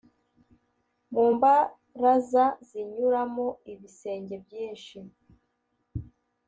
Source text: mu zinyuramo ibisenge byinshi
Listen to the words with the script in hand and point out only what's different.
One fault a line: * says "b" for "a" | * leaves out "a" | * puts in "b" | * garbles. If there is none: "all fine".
* puts in "mbaraza"